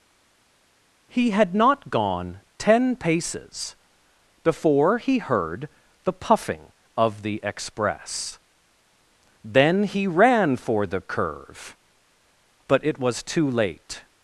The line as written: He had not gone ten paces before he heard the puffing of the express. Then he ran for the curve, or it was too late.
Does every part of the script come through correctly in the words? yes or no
no